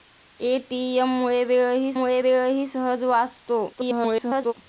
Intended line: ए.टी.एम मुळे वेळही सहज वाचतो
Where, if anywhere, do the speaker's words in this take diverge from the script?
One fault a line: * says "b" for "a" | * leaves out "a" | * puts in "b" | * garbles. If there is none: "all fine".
* puts in "मुळे वेळही"
* garbles